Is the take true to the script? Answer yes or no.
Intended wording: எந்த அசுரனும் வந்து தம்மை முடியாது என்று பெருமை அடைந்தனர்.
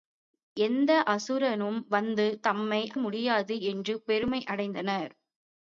yes